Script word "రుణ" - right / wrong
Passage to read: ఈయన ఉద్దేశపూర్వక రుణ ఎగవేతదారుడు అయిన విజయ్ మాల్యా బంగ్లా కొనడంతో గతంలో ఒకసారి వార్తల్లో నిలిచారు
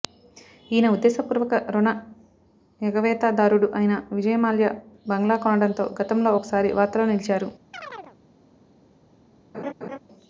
right